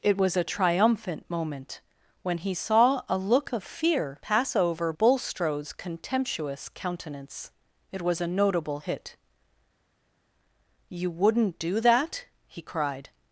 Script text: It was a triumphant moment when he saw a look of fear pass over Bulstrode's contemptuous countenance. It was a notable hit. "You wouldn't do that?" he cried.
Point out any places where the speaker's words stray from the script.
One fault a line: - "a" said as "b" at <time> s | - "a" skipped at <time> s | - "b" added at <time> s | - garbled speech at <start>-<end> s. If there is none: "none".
none